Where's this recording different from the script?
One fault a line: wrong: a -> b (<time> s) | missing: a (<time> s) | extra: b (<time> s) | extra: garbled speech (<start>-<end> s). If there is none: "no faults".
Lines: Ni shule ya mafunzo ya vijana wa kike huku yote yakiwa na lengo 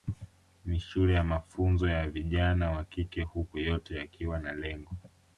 no faults